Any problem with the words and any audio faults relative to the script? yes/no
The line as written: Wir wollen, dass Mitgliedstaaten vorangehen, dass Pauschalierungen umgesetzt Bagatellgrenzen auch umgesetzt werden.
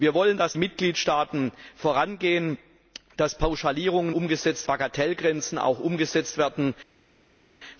no